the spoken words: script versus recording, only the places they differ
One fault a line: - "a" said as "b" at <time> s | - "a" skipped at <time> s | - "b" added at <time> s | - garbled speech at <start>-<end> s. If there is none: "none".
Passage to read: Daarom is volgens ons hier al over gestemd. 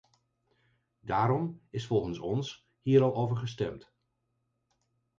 none